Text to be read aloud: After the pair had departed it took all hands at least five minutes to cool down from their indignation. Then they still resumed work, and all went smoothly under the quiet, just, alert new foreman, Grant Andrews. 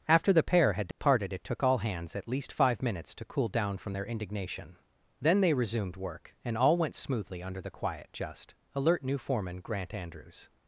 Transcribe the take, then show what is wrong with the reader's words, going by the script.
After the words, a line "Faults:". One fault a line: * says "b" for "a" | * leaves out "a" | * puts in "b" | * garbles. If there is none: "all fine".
After the pair had departed it took all hands at least five minutes to cool down from their indignation. Then they resumed work, and all went smoothly under the quiet, just, alert new foreman, Grant Andrews.
Faults:
* leaves out "still"